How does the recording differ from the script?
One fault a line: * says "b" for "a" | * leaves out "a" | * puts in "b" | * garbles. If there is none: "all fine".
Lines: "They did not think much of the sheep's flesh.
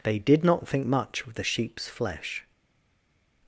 all fine